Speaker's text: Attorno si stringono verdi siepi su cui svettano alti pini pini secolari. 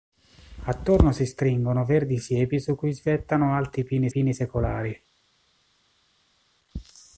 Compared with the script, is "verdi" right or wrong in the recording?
right